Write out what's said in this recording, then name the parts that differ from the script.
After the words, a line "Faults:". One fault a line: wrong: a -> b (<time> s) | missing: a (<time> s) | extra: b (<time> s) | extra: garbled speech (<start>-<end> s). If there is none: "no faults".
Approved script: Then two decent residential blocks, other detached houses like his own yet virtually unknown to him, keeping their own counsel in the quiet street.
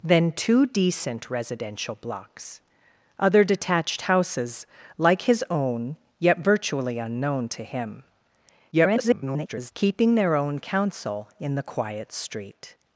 Then two decent residential blocks, other detached houses like his own yet virtually unknown to him, [garbled] keeping their own counsel in the quiet street.
Faults:
extra: garbled speech (8.7-9.7 s)